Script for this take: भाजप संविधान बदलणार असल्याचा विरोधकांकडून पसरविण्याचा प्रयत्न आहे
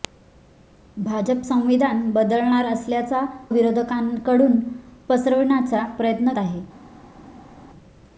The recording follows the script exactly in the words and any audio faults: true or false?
true